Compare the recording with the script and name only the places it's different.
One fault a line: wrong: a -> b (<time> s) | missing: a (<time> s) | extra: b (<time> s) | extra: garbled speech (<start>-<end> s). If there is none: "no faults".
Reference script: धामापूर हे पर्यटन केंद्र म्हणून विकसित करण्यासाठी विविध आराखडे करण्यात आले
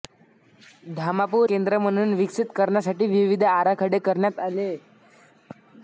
missing: हे पर्यटन (1.5 s)